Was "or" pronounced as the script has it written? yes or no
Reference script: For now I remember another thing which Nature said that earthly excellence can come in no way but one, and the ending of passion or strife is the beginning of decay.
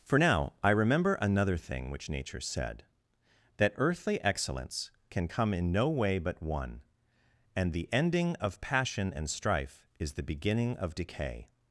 no